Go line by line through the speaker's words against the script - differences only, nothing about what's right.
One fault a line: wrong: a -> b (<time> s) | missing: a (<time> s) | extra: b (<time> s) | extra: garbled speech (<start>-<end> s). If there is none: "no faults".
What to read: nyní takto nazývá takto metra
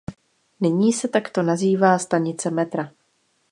extra: se (0.9 s)
wrong: takto -> stanice (2.0 s)